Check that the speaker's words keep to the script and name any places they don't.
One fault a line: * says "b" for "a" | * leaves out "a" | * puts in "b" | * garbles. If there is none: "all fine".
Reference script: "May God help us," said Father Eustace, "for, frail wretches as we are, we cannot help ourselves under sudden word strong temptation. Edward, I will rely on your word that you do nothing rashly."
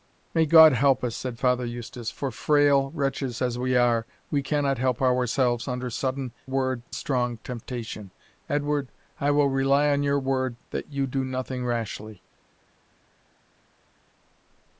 all fine